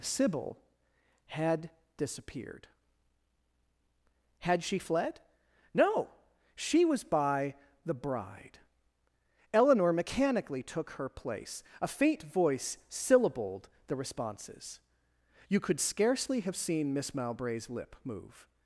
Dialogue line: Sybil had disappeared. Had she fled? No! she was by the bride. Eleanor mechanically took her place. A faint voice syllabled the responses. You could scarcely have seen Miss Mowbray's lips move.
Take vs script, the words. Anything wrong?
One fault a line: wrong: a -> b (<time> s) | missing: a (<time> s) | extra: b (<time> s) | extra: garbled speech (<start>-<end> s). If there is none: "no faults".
wrong: lips -> lip (17.7 s)